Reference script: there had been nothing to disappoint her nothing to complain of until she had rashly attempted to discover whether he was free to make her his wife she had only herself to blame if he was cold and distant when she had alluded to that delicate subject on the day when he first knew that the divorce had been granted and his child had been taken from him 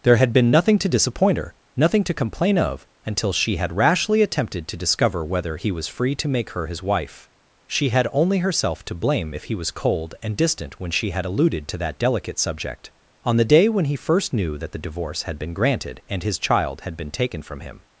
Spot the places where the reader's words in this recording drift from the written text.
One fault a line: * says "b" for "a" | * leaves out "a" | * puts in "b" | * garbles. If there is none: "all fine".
all fine